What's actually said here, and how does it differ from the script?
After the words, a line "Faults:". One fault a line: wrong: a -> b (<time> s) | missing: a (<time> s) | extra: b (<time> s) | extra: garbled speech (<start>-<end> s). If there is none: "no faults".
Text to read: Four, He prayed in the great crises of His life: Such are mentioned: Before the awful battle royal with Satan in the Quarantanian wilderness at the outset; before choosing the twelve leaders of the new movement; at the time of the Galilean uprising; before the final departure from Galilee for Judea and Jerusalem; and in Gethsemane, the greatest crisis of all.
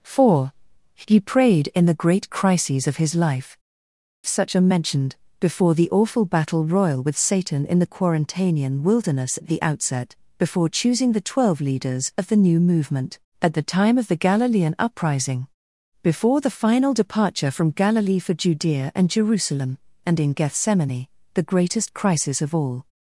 Four, He prayed in the great crises of His life: Such are mentioned: Before the awful battle royal with Satan in the Quarantanian wilderness at the outset; before choosing the twelve leaders of the new movement; at the time of the Galilean uprising; before the final departure from Galilee for Judea and Jerusalem; and in Gethsemane, the greatest crisis of all.
Faults:
no faults